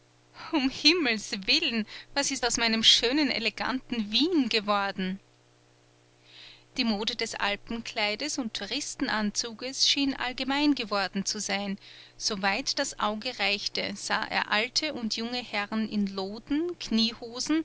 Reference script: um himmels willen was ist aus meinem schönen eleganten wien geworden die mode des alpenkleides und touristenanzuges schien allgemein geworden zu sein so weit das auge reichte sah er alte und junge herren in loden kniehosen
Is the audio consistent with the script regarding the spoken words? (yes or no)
yes